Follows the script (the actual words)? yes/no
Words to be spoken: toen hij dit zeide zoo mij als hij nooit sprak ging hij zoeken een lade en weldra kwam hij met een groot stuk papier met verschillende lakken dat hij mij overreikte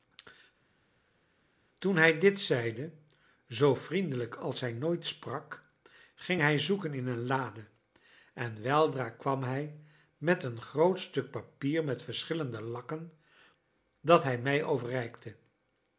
no